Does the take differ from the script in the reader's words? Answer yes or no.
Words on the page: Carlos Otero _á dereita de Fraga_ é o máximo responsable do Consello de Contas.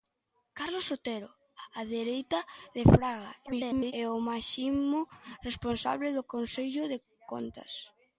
yes